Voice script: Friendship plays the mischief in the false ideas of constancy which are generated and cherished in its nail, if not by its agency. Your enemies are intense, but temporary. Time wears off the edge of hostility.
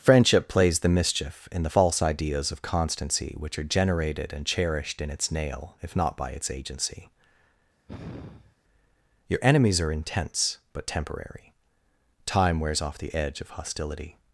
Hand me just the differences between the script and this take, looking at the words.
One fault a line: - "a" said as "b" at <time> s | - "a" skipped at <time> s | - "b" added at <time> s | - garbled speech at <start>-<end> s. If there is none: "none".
none